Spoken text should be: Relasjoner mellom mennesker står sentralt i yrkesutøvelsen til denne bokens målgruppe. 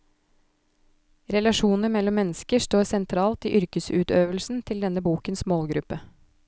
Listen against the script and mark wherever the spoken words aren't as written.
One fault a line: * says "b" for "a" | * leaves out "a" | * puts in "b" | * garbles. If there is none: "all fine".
all fine